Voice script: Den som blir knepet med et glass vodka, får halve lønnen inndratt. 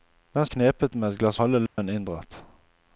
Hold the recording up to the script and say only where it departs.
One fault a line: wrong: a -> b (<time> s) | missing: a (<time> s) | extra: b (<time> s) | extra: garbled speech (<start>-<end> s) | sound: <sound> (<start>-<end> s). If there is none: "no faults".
missing: som blir (0.5 s)
missing: vodka får (1.4 s)
sound: dropout (1.7-1.8 s)